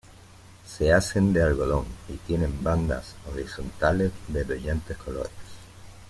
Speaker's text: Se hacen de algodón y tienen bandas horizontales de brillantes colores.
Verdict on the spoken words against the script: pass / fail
pass